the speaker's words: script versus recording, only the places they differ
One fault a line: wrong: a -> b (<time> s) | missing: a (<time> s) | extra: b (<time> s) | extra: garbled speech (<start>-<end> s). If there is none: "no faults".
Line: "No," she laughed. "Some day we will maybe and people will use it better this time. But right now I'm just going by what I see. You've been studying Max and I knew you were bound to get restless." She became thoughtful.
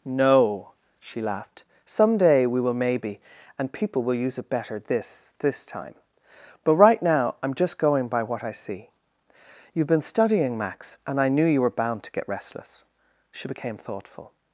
extra: this (5.4 s)